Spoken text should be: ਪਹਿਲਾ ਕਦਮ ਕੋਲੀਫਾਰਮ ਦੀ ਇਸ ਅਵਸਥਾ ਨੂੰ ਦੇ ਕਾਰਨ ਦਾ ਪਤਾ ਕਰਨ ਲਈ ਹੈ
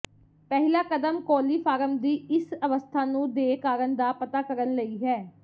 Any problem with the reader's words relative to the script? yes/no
no